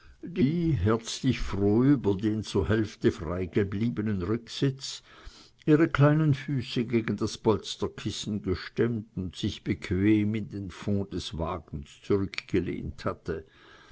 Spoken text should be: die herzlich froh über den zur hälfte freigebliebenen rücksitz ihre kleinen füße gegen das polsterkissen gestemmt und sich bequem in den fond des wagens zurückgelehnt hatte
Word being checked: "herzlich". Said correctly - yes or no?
yes